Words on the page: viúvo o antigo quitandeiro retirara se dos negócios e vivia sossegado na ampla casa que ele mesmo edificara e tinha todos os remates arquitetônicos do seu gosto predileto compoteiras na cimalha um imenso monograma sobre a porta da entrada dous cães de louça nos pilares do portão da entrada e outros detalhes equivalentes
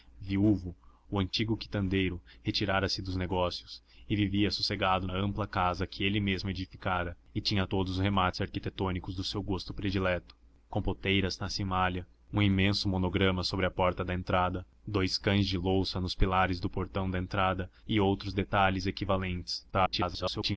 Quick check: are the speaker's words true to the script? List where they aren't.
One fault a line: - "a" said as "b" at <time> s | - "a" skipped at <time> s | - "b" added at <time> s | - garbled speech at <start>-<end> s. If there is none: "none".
- "na" skipped at 5.1 s
- garbled speech at 19.7-20.6 s